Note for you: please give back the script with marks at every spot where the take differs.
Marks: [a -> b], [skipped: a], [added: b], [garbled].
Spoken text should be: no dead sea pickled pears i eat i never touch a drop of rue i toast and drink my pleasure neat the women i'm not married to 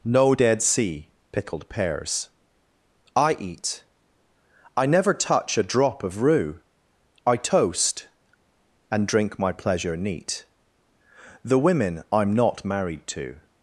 no dead sea pickled pears i eat i never touch a drop of rue i toast and drink my pleasure neat the women i'm not married to